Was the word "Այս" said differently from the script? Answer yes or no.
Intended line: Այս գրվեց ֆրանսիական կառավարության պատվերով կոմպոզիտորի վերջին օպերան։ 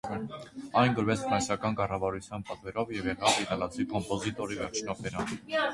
yes